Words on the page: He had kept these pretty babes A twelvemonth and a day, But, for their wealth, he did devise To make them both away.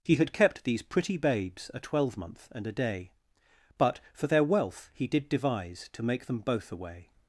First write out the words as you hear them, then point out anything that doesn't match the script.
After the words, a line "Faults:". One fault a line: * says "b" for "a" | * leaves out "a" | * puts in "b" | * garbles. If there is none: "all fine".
He had kept these pretty babes A twelvemonth and a day, But, for their wealth, he did devise To make them both away.
Faults:
all fine